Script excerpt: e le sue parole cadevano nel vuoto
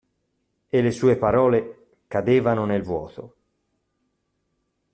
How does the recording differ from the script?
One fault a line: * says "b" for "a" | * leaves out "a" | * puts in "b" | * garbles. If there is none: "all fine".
all fine